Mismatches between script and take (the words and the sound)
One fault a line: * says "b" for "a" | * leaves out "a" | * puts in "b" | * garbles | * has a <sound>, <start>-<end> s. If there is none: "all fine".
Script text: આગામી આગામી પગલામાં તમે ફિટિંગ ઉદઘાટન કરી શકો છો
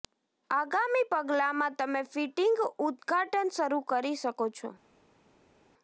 * leaves out "આગામી"
* puts in "શરૂ"